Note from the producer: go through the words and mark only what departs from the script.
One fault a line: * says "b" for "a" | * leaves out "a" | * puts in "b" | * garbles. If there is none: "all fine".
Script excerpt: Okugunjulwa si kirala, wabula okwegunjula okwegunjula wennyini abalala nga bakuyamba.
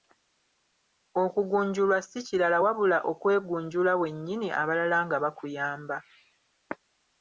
* leaves out "okwegunjula"